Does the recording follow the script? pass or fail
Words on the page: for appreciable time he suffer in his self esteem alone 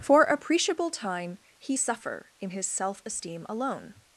pass